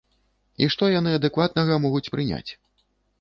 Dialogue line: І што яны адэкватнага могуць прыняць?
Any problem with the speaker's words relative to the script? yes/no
no